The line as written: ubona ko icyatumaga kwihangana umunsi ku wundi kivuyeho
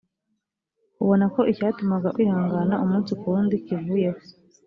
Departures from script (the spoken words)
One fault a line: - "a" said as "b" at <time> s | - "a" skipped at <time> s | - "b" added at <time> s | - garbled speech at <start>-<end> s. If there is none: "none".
none